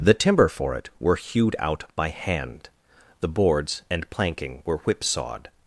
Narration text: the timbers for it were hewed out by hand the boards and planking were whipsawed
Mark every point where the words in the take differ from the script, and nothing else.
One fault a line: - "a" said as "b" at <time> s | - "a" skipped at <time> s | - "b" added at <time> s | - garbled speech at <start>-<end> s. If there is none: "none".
- "timbers" said as "timber" at 0.1 s